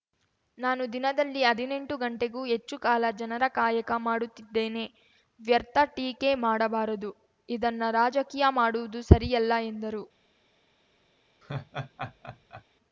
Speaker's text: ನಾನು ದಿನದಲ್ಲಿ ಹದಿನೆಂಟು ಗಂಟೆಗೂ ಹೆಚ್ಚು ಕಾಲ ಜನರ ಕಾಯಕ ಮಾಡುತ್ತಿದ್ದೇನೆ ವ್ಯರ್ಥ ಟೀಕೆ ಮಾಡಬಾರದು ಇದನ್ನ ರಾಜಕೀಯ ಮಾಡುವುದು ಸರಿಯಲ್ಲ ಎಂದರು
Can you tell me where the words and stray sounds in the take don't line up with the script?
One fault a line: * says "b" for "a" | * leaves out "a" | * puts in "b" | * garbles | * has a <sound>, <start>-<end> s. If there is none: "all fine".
* has a laugh, 11.4-12.6 s